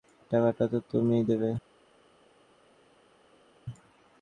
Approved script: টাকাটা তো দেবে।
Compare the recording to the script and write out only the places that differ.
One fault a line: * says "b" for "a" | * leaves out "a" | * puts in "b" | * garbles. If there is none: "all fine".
* puts in "তুমিই"